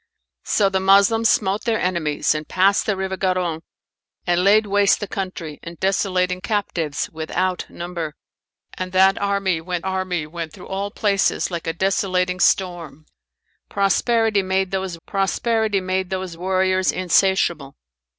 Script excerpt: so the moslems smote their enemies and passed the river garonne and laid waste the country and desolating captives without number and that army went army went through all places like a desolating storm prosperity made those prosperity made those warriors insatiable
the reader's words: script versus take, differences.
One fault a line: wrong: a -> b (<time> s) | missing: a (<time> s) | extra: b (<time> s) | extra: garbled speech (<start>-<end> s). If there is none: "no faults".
no faults